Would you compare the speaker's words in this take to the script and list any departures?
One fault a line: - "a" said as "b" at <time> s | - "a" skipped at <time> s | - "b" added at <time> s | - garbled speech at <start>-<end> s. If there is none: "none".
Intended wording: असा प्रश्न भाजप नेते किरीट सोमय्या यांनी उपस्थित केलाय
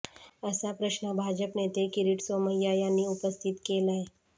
none